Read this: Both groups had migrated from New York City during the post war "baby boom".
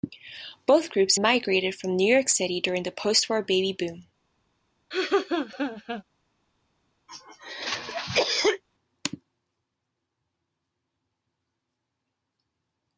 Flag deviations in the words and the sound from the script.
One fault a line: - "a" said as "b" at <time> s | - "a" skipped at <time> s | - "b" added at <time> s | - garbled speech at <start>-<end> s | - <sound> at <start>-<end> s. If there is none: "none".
- "had" skipped at 1.2 s
- laugh at 4.9-6.0 s
- cough at 7.1-8.6 s